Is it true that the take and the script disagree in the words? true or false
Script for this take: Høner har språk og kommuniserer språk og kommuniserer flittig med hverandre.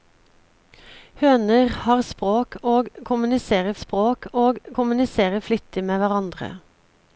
false